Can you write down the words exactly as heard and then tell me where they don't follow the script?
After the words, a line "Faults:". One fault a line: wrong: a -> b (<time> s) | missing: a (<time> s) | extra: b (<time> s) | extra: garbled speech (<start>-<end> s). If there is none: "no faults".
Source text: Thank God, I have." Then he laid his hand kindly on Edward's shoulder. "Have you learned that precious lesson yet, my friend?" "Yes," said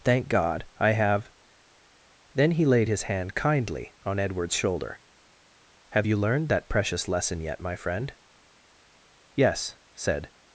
Thank God, I have." Then he laid his hand kindly on Edward's shoulder. "Have you learned that precious lesson yet, my friend?" "Yes," said
Faults:
no faults